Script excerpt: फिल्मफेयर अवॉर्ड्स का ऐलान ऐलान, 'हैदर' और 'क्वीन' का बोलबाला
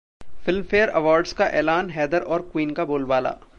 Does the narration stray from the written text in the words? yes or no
yes